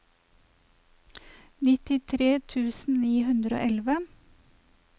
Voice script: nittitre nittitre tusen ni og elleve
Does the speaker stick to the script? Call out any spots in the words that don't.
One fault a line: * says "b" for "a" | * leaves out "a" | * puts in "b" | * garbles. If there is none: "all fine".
* leaves out "nittitre"
* puts in "hundre"